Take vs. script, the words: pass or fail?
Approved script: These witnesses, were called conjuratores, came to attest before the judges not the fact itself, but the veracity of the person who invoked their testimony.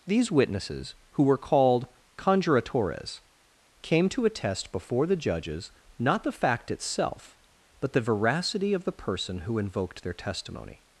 fail